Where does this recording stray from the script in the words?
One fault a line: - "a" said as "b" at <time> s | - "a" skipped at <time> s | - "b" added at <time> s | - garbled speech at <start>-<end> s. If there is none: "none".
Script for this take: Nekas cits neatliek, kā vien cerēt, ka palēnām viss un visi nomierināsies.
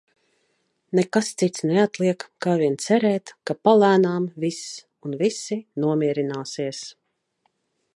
none